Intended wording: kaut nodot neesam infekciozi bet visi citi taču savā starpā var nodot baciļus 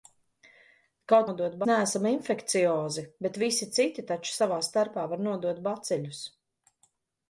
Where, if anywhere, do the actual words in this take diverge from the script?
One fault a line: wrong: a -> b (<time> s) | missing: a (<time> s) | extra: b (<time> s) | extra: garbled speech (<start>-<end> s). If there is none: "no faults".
no faults